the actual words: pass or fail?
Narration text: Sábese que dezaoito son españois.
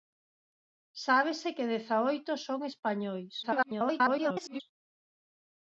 fail